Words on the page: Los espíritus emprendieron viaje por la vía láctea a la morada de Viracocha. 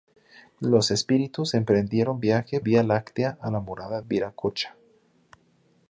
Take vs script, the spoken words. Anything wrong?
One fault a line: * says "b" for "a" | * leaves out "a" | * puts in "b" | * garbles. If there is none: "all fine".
* leaves out "por la"
* leaves out "de"